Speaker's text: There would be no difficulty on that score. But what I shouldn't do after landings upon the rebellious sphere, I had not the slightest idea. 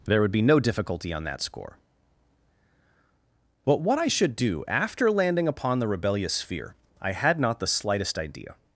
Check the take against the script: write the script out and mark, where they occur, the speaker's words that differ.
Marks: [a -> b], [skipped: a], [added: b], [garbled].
There would be no difficulty on that score. But what I [shouldn't -> should] do after [landings -> landing] upon the rebellious sphere, I had not the slightest idea.